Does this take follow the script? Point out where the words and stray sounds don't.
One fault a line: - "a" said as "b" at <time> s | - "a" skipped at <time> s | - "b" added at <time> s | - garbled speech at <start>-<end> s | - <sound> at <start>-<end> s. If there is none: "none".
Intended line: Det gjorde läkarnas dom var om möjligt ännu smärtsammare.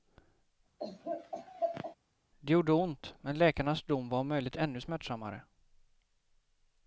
- laugh at 0.8-2.0 s
- "ont men" added at 2.7 s